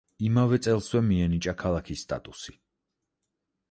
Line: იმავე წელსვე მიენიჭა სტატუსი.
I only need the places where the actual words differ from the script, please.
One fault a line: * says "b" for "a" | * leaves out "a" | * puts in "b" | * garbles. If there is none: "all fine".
* puts in "ქალაქის"